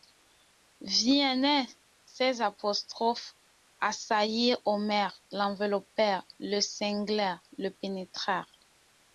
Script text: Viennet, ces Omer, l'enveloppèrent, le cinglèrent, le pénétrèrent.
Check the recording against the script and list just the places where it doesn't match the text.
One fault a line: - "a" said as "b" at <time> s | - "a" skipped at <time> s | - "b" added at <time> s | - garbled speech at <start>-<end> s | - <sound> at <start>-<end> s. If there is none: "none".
- "apostrophes assaillirent" added at 2.4 s